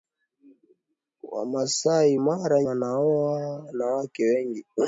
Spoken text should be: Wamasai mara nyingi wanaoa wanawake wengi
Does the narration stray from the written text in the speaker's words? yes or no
yes